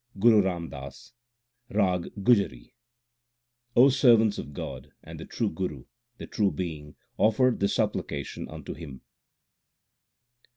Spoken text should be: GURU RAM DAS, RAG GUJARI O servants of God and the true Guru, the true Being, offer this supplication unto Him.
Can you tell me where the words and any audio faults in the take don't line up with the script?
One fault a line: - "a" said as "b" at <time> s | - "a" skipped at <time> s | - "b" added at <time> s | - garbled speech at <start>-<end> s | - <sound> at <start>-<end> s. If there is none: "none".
none